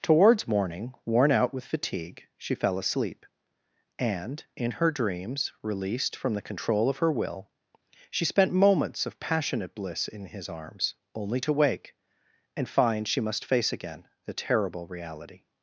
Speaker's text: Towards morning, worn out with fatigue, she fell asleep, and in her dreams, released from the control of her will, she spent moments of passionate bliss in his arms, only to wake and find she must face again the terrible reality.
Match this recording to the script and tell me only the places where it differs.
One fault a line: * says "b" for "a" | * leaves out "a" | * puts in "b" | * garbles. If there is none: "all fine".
all fine